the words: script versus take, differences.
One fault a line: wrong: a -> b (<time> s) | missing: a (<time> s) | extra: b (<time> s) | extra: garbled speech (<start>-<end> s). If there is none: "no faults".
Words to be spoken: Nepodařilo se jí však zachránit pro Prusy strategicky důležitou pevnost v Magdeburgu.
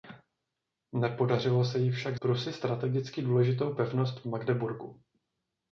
missing: zachránit pro (2.2 s)